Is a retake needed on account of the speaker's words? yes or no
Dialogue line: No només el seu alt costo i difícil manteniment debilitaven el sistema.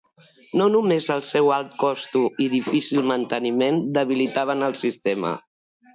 no